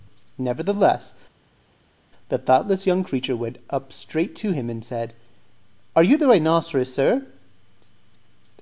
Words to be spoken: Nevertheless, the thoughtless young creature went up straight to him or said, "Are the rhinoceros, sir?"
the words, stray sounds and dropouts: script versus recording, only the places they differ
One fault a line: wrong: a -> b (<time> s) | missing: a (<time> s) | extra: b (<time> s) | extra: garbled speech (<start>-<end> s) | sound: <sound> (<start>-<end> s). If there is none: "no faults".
wrong: or -> and (4.7 s)
extra: you (6.0 s)